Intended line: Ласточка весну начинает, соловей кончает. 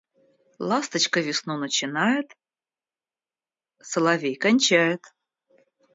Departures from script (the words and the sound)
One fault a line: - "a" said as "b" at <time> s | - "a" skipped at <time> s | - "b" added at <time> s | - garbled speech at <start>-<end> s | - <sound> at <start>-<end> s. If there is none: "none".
none